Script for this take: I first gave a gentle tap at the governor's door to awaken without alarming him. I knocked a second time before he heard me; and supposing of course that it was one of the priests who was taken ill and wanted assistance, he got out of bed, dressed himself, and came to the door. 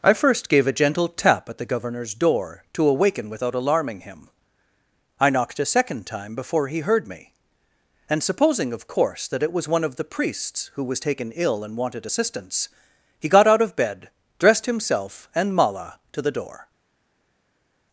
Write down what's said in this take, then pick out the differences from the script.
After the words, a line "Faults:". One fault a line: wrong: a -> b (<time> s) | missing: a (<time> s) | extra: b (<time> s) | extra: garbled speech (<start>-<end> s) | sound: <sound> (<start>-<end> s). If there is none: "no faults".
I first gave a gentle tap at the governor's door to awaken without alarming him. I knocked a second time before he heard me; and supposing of course that it was one of the priests who was taken ill and wanted assistance, he got out of bed, dressed himself, and mala to the door.
Faults:
wrong: came -> mala (15.6 s)